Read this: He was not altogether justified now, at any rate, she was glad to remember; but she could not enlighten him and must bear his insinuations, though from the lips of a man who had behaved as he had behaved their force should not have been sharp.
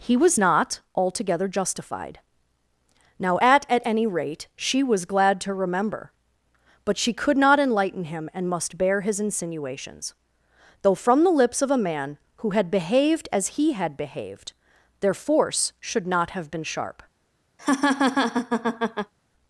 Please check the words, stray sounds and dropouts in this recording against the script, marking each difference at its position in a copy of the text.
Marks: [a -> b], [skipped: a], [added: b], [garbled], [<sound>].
He was not altogether justified now, at [added: at] any rate, she was glad to remember; but she could not enlighten him and must bear his insinuations, though from the lips of a man who had behaved as he had behaved their force should not have been sharp. [laugh]